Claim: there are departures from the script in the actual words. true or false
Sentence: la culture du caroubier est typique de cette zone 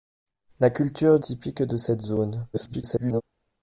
true